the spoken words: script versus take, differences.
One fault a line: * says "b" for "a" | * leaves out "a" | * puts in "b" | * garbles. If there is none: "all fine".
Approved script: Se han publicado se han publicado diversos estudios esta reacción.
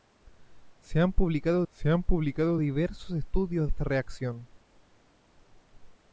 all fine